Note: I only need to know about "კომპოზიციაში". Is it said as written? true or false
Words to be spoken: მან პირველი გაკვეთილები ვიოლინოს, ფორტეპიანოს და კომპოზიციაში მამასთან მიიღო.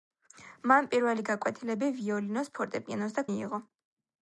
false